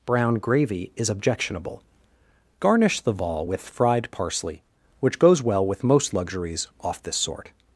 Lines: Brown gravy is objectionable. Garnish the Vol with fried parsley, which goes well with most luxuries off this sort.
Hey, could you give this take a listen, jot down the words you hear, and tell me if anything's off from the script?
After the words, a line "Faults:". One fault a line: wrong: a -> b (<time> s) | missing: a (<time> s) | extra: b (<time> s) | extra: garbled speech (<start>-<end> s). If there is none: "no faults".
Brown gravy is objectionable. Garnish the Vol with fried parsley, which goes well with most luxuries off this sort.
Faults:
no faults